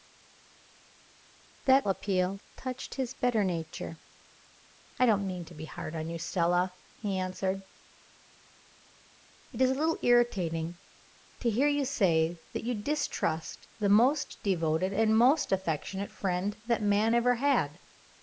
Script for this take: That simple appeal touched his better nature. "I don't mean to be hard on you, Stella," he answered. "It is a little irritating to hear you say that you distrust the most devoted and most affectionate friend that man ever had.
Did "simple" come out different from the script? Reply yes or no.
yes